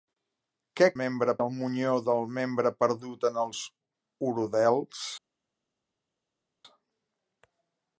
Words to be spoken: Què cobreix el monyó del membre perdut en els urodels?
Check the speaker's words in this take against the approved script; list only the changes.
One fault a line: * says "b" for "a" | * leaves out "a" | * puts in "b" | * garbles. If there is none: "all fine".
* says "membre" for "cobreix"